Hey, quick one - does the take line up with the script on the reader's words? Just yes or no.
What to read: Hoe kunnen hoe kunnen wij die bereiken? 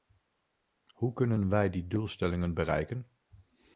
no